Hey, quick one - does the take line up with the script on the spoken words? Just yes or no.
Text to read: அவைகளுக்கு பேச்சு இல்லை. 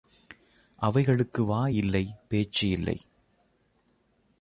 no